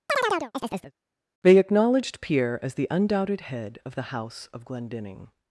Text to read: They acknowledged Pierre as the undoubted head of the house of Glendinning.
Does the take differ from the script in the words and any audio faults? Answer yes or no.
yes